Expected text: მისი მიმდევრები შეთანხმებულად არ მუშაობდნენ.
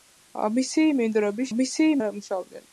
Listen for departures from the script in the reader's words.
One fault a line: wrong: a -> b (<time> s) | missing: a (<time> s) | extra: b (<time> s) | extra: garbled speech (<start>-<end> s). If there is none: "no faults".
wrong: შეთანხმებულად -> მისი (1.6 s)